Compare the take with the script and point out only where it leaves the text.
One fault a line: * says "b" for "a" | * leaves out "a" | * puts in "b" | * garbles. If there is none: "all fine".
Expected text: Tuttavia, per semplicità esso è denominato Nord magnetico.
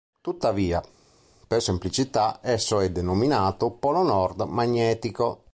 * puts in "Polo"